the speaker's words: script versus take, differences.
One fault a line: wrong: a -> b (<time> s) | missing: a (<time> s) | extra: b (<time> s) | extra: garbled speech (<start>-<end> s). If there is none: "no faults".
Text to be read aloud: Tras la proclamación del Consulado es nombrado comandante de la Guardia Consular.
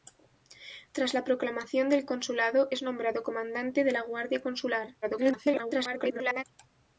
extra: garbled speech (5.0-6.4 s)